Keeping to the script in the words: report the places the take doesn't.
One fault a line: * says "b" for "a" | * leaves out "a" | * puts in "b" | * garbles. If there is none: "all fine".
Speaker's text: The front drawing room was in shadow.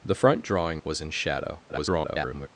* leaves out "room"
* garbles